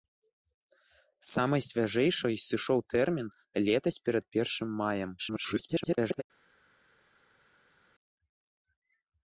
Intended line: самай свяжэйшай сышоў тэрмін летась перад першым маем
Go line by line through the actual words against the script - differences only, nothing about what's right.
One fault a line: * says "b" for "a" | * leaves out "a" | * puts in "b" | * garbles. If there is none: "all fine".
* garbles